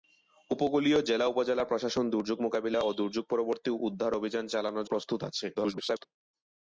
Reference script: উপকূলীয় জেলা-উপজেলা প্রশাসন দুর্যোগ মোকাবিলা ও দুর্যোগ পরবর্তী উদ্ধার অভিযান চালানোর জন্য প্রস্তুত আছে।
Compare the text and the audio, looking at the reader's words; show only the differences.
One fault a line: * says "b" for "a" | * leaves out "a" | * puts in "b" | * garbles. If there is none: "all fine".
* leaves out "জন্য"
* garbles